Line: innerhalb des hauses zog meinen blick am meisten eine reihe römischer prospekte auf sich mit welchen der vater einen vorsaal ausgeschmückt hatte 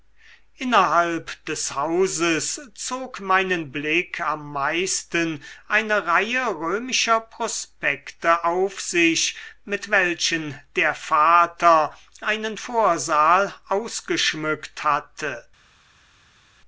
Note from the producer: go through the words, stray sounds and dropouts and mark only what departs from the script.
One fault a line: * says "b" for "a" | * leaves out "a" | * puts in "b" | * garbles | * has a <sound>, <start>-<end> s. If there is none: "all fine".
all fine